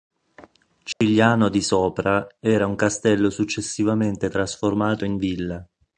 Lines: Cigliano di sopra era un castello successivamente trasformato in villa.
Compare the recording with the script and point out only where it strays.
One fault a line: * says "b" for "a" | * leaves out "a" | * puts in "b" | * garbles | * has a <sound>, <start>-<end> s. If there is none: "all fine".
* has a dropout, 0.9-1.0 s